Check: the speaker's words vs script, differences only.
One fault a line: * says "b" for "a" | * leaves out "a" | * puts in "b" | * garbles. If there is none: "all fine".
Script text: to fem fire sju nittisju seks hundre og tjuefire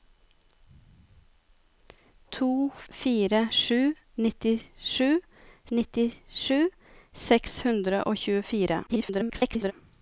* leaves out "fem"
* puts in "nittisju"
* garbles